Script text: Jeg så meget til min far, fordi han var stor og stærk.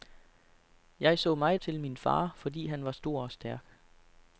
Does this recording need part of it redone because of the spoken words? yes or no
no